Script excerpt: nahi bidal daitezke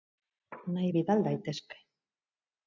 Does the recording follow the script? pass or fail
pass